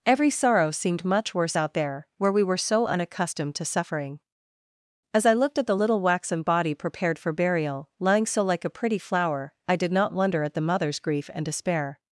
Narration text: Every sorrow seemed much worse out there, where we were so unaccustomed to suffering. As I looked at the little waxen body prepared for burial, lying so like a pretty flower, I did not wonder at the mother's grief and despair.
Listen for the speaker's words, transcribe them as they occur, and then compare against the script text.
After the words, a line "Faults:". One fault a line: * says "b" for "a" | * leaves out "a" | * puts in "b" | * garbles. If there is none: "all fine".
Every sorrow seemed much worse out there, where we were so unaccustomed to suffering. As I looked at the little waxen body prepared for burial, lying so like a pretty flower, I did not wonder at the mother's grief and despair.
Faults:
all fine